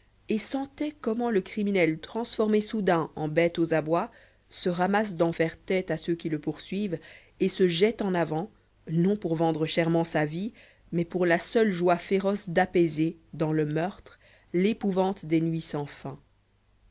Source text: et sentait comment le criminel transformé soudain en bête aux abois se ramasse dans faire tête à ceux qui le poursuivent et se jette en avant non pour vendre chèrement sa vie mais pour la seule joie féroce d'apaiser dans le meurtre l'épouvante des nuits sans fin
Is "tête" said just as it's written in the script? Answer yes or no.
yes